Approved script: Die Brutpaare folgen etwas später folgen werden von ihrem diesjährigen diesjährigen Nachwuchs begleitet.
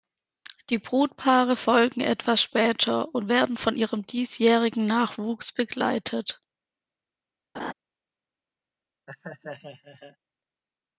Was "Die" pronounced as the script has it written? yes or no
yes